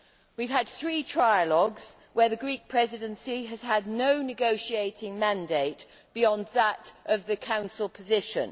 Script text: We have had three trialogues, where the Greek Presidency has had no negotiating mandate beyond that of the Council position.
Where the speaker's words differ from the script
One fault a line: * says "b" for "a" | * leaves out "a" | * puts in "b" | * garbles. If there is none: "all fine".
all fine